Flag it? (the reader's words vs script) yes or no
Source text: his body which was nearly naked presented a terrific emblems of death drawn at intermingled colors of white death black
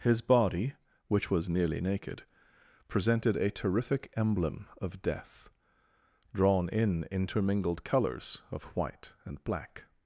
yes